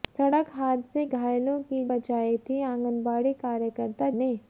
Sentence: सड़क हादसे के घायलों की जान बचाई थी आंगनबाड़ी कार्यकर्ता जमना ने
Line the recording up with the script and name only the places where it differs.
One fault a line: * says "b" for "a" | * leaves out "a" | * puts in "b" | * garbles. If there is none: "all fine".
* leaves out "के"
* leaves out "जान"
* leaves out "जमना"